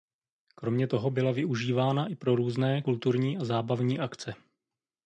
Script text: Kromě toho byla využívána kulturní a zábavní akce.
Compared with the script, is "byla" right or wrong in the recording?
right